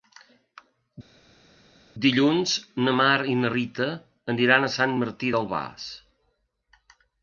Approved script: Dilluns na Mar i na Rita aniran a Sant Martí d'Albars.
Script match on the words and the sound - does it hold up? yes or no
yes